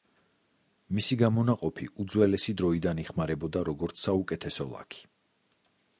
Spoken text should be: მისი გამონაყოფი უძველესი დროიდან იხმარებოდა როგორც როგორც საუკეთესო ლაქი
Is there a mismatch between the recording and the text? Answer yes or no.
yes